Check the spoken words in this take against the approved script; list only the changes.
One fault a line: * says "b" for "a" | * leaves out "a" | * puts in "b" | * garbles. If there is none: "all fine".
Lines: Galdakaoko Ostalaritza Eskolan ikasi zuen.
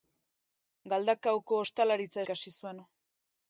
* leaves out "Eskolan"